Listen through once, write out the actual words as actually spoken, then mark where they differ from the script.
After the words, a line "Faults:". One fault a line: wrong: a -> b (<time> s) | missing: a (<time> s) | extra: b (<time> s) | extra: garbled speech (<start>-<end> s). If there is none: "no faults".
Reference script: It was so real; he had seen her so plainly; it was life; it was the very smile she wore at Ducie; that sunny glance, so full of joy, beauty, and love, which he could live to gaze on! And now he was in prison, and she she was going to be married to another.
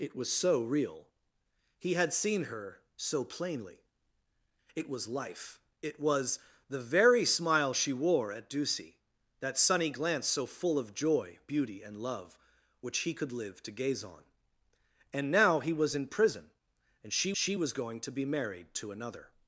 It was so real; he had seen her so plainly; it was life; it was the very smile she wore at Ducie; that sunny glance, so full of joy, beauty, and love, which he could live to gaze on! And now he was in prison, and she she was going to be married to another.
Faults:
no faults